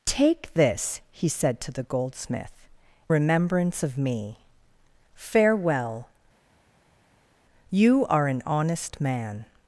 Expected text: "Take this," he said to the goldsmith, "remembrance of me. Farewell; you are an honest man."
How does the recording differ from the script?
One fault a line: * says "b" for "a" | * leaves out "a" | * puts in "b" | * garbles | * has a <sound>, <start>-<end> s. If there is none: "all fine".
all fine